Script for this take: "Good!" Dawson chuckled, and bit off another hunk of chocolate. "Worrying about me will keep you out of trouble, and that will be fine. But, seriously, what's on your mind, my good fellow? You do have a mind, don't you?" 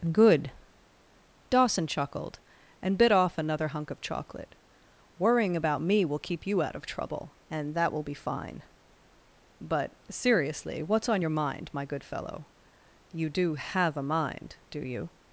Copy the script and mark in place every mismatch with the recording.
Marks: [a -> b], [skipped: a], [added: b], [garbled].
"Good!" Dawson chuckled, and bit off another hunk of chocolate. "Worrying about me will keep you out of trouble, and that will be fine. But, seriously, what's on your mind, my good fellow? You do have a mind, [don't -> do] you?"